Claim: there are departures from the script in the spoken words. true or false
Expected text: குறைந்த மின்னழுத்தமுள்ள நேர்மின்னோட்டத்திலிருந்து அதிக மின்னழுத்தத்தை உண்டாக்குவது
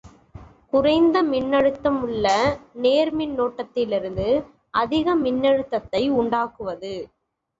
false